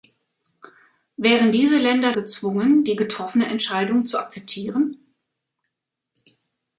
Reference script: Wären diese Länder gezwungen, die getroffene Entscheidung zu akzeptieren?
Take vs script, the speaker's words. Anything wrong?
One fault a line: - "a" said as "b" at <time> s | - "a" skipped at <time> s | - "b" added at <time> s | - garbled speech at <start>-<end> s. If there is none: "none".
none